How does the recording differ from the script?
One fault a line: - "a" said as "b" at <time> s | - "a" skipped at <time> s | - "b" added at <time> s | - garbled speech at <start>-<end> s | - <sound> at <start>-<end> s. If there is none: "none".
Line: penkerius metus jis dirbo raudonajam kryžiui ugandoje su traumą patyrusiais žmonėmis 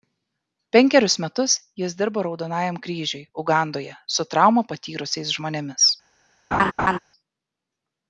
- laugh at 6.5-7.0 s